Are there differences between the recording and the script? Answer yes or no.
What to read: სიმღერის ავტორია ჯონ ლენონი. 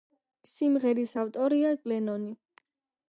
yes